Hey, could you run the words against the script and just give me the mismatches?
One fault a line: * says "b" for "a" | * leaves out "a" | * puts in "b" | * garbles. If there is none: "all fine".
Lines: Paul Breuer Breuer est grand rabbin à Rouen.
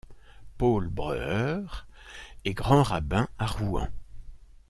* leaves out "Breuer"